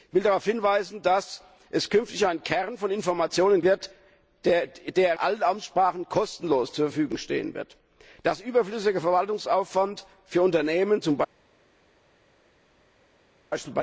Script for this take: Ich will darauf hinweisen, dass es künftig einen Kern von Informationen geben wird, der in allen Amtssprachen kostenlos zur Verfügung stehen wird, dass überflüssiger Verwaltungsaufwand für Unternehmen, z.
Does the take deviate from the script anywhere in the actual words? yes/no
yes